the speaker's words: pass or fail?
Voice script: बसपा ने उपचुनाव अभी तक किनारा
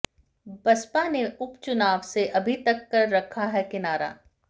fail